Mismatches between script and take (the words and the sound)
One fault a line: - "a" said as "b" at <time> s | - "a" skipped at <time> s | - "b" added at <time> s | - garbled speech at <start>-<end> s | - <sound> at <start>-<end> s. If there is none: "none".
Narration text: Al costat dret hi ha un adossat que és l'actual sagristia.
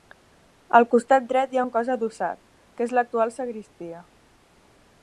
- "cos" added at 1.7 s